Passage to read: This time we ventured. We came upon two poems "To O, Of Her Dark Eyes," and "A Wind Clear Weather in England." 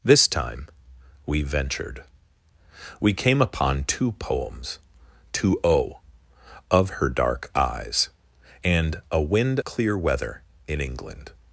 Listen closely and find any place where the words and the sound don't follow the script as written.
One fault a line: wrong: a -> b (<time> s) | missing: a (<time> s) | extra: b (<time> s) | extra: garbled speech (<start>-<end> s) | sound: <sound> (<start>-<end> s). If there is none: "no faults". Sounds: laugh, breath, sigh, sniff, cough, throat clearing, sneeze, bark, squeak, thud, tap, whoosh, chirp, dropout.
no faults